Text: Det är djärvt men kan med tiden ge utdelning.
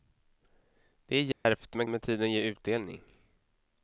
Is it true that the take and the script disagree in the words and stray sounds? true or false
true